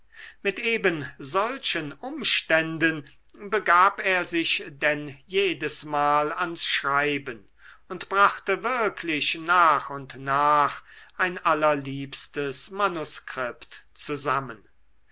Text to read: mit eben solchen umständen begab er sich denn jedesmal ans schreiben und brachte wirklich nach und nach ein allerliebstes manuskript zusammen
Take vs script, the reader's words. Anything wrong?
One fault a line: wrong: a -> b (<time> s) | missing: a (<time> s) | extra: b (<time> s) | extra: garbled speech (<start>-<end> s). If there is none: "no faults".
no faults